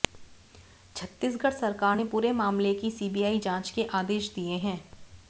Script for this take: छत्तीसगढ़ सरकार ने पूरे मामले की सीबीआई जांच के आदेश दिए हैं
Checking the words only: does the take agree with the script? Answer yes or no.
yes